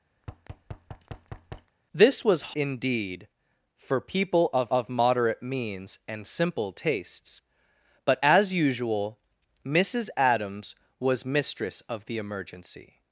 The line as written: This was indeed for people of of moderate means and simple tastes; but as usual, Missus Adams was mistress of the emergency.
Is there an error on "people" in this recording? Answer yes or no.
no